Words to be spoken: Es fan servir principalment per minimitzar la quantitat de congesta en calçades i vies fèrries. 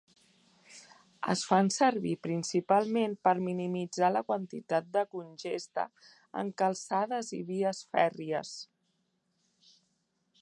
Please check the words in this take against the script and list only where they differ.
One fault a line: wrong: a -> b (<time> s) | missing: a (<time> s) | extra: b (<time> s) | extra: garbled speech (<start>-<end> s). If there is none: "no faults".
no faults